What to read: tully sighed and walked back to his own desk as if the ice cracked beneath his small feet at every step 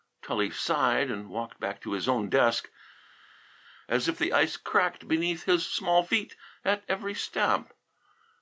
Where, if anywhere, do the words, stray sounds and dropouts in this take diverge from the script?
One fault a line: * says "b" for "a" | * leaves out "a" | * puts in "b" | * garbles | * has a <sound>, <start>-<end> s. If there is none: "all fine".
all fine